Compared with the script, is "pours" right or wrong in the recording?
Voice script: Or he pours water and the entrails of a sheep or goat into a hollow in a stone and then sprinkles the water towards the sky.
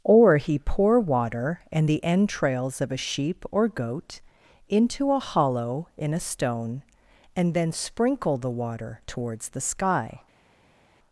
wrong